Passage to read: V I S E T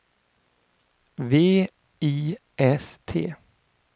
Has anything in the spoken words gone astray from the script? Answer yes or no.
yes